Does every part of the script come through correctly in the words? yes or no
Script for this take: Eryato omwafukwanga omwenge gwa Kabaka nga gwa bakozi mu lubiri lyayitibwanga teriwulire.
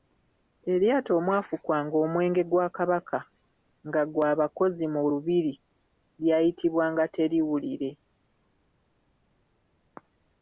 yes